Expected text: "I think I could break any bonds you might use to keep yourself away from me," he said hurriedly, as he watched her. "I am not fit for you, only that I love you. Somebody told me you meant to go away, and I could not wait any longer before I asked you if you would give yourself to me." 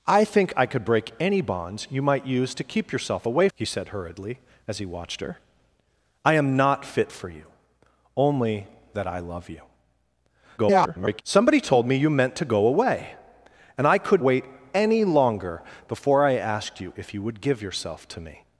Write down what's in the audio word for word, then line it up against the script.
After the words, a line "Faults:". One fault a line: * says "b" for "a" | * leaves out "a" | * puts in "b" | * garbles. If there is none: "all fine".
"I think I could break any bonds you might use to keep yourself away," he said hurriedly, as he watched her. "I am not fit for you, only that I love you. [garbled] Somebody told me you meant to go away, and I could wait any longer before I asked you if you would give yourself to me."
Faults:
* leaves out "from me"
* garbles
* leaves out "not"